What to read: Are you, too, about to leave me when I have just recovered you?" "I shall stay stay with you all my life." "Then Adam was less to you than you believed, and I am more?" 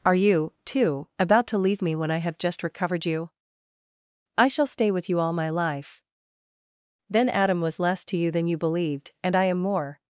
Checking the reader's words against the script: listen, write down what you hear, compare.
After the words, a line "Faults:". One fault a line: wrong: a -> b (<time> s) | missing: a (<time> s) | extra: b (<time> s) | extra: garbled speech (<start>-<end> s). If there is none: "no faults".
Are you, too, about to leave me when I have just recovered you?" "I shall stay with you all my life." "Then Adam was less to you than you believed, and I am more?"
Faults:
missing: stay (4.9 s)